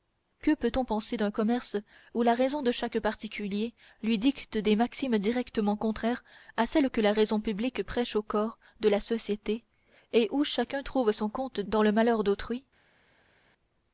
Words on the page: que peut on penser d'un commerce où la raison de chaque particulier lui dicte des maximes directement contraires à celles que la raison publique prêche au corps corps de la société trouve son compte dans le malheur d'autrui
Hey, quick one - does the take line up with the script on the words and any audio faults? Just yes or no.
no